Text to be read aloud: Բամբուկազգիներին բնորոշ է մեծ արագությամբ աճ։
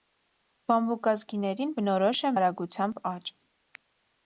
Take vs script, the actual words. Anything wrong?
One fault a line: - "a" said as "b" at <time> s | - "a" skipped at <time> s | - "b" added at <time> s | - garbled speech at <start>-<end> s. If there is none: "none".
- "մեծ" skipped at 2.3 s